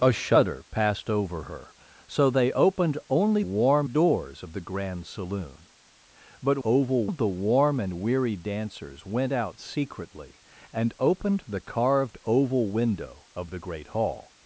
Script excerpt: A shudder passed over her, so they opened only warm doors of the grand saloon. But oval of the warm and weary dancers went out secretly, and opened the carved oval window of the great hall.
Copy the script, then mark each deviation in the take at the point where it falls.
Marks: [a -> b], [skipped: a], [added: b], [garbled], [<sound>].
A shudder passed over her, so they opened only warm doors of the grand saloon. But oval of the warm and weary dancers went out secretly, and opened the carved oval window of the great hall.